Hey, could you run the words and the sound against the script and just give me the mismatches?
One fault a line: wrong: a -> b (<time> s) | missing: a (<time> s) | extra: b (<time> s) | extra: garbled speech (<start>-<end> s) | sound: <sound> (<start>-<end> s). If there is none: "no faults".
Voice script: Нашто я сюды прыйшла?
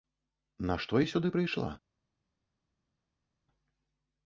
no faults